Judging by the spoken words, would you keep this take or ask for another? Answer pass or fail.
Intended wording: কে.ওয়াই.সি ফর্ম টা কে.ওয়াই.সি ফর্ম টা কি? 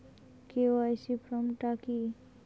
fail